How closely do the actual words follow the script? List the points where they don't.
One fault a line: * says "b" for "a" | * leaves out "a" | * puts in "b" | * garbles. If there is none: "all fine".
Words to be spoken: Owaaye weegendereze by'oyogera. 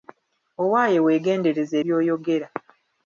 all fine